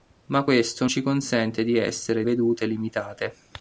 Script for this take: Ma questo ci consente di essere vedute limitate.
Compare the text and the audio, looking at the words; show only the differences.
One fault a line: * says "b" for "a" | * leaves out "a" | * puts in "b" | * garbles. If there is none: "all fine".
all fine